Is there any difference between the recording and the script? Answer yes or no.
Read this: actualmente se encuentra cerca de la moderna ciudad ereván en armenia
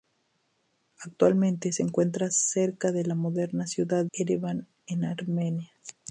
no